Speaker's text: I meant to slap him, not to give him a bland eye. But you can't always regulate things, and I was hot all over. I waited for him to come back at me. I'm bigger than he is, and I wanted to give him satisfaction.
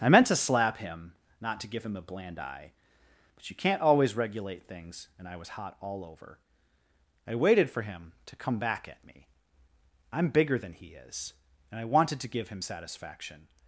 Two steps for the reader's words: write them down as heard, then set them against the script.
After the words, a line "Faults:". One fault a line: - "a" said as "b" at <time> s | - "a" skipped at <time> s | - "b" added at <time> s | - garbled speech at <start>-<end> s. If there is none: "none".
I meant to slap him, not to give him a bland eye. But you can't always regulate things, and I was hot all over. I waited for him to come back at me. I'm bigger than he is, and I wanted to give him satisfaction.
Faults:
none